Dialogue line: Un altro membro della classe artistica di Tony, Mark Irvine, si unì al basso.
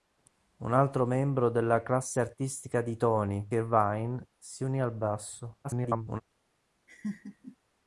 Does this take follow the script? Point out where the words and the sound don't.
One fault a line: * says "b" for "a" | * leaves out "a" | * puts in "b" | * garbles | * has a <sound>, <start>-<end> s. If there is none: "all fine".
* leaves out "Mark"
* garbles
* has a laugh, 6.9-7.6 s